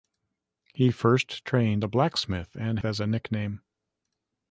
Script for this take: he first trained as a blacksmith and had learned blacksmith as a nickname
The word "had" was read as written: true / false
false